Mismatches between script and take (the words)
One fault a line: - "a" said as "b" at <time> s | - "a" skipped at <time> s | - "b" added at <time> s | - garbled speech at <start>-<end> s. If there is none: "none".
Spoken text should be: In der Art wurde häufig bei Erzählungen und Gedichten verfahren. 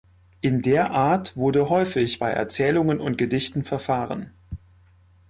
none